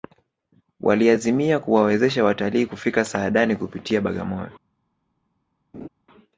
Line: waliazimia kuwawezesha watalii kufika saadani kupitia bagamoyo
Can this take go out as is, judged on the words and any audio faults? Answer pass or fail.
fail